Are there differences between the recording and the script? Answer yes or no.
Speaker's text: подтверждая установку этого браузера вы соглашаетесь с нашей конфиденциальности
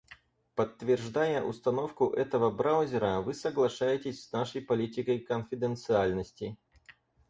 yes